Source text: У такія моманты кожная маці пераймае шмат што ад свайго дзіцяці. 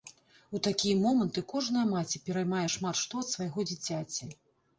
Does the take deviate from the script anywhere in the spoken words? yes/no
no